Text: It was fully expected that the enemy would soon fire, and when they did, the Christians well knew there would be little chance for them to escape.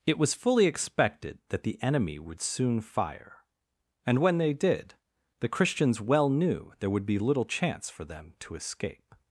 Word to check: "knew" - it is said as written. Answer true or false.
true